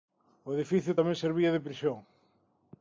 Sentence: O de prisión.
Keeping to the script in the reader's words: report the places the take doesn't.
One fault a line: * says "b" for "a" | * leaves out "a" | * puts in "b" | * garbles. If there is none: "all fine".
* puts in "edificio tamén servía"